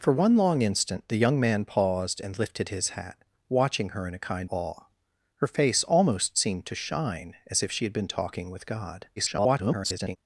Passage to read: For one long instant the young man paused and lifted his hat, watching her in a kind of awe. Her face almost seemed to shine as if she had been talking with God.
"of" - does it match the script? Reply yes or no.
no